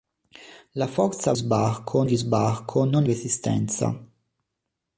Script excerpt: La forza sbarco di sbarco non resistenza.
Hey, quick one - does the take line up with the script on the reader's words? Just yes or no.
yes